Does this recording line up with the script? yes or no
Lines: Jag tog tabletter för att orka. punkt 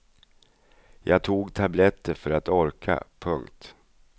yes